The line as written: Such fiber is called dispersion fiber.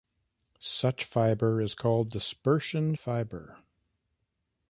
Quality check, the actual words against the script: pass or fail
pass